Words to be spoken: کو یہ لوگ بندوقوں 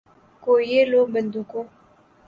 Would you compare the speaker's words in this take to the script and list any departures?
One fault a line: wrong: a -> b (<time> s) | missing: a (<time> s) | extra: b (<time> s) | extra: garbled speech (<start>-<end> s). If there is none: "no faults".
no faults